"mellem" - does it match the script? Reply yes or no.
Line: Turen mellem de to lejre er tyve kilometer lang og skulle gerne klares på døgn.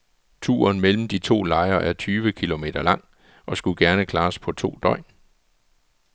yes